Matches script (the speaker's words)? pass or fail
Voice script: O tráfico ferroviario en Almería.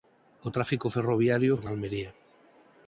pass